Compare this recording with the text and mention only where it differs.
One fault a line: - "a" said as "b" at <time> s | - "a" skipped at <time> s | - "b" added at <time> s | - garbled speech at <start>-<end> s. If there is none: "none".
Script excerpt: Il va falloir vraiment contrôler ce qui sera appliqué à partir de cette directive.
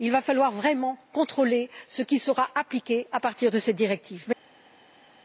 none